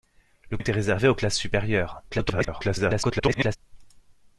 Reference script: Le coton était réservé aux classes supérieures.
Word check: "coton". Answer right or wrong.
wrong